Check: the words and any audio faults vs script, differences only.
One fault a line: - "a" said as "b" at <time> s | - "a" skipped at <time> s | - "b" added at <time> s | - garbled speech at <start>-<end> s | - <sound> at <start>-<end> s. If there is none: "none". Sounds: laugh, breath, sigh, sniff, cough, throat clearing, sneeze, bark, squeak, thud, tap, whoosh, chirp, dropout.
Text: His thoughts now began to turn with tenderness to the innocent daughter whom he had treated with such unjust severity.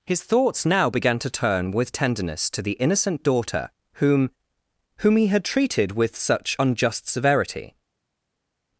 - "whom" added at 5.0 s